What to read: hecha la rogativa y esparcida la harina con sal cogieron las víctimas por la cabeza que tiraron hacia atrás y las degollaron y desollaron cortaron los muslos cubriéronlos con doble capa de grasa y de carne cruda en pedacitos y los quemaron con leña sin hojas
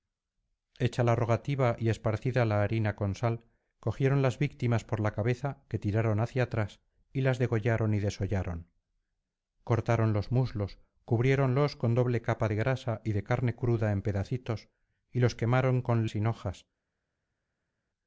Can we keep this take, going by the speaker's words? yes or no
no